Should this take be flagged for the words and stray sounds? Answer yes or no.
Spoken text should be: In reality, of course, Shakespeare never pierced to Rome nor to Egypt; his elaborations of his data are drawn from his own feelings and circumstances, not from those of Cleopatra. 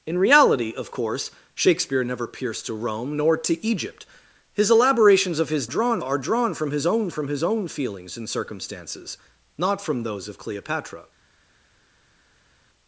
yes